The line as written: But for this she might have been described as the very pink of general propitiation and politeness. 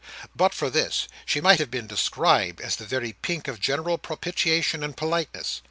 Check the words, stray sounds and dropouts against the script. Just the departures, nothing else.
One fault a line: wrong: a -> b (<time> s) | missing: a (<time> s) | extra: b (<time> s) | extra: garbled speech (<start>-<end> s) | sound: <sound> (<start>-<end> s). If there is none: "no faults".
no faults